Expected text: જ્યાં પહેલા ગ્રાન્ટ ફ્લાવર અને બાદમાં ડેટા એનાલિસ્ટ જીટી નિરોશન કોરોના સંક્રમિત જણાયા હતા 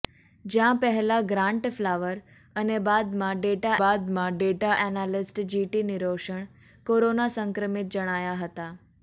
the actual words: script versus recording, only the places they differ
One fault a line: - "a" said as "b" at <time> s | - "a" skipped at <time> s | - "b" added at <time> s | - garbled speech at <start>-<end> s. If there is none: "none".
- "બાદમાં ડેટા" added at 3.8 s